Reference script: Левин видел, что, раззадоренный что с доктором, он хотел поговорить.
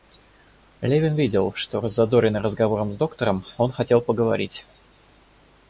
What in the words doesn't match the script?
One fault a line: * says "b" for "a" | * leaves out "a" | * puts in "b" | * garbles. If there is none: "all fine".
* says "разговором" for "что"